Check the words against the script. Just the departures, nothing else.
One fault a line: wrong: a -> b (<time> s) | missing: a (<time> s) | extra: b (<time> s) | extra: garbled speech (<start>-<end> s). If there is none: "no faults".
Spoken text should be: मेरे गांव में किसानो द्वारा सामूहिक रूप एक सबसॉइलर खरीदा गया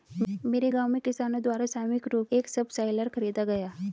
no faults